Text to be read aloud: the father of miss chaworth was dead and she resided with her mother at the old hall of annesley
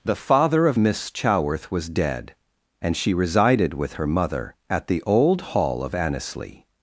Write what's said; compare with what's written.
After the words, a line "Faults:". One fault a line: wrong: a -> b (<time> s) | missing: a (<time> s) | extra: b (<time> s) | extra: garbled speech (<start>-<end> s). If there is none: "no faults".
the father of miss chaworth was dead and she resided with her mother at the old hall of annesley
Faults:
no faults